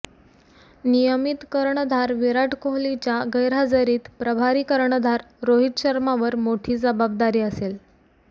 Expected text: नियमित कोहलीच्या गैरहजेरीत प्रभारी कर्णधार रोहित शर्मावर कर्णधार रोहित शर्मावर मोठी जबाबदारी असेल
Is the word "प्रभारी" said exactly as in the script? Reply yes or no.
yes